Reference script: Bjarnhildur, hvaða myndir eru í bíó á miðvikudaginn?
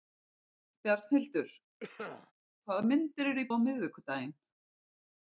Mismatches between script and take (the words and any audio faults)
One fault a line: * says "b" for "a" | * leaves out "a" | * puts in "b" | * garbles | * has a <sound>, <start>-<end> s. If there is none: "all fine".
* has a cough, 1.8-2.3 s
* leaves out "bíó"